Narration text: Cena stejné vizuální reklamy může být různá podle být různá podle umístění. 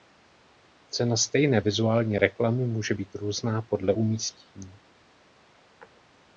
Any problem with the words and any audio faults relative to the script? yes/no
yes